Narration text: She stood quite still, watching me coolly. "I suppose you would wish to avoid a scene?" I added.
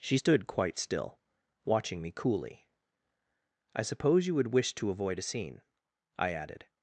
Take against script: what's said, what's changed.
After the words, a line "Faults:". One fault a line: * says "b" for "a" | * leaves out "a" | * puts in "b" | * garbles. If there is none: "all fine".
She stood quite still, watching me coolly. "I suppose you would wish to avoid a scene?" I added.
Faults:
all fine